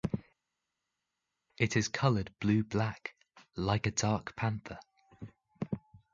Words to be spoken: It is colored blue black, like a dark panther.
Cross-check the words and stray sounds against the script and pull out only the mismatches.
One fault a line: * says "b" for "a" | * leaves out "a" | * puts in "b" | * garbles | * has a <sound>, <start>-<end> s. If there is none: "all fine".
all fine